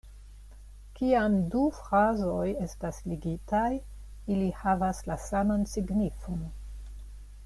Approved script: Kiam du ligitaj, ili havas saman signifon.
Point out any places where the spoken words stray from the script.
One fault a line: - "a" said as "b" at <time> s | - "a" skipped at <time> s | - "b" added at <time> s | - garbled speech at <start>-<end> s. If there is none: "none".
- "frazoj estas" added at 1.8 s
- "la" added at 5.1 s